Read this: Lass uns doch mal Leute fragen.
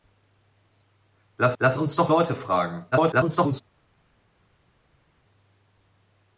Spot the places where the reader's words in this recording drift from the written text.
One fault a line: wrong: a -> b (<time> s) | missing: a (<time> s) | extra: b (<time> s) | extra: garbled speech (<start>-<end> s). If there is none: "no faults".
extra: lass (1.6 s)
missing: mal (2.1 s)
extra: garbled speech (2.9-3.6 s)